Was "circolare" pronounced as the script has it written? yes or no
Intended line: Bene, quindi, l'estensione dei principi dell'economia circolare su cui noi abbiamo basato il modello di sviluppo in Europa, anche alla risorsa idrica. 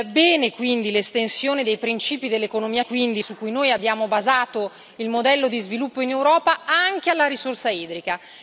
no